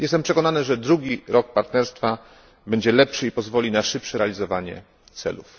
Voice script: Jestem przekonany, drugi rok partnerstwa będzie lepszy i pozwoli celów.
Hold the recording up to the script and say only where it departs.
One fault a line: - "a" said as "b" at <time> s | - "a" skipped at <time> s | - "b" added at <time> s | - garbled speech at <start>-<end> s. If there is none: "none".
- "że" added at 0.6 s
- "na szybsze realizowanie" added at 3.7 s